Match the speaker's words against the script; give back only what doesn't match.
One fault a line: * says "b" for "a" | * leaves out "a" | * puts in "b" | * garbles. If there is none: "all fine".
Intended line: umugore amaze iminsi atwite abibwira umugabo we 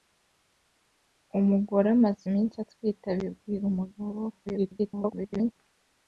* garbles